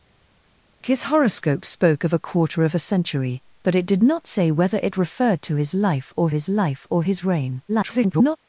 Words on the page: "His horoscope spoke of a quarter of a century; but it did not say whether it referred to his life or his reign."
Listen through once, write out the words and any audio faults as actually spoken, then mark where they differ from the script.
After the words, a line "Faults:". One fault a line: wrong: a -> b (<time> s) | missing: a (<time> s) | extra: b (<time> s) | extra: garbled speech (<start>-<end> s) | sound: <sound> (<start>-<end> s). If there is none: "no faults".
"His horoscope spoke of a quarter of a century; but it did not say whether it referred to his life or his life or his reign." [garbled]
Faults:
extra: life or his (6.5 s)
extra: garbled speech (7.7-8.4 s)